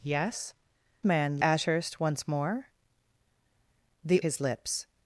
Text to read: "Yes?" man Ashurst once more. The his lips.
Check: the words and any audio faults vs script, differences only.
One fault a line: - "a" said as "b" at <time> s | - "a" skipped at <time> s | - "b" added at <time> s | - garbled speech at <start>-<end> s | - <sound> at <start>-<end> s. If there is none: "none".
none